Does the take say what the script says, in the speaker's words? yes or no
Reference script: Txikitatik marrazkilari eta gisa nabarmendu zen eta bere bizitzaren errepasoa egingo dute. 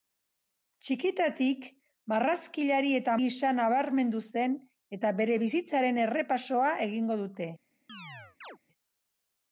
yes